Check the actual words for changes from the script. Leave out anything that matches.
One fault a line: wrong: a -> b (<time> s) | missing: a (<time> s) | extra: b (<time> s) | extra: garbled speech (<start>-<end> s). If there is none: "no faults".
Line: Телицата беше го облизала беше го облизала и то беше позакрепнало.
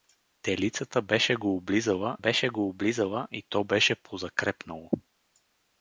no faults